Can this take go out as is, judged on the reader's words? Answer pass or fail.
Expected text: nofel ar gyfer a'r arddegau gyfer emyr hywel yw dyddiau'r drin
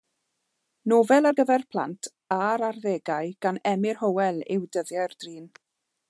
fail